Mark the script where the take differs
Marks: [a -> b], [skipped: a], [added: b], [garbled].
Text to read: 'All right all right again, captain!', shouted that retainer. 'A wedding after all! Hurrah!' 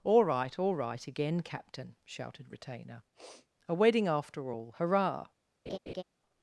'All right all right again, captain!', shouted [skipped: that] retainer. 'A wedding after all! Hurrah!'